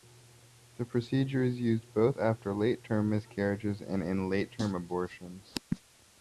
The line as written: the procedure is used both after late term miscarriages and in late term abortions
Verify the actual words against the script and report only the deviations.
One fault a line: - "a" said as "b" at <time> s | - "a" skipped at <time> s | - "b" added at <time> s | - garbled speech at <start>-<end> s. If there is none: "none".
none